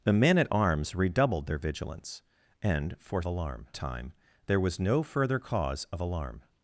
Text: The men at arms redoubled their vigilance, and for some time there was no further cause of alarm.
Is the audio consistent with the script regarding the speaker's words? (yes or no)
no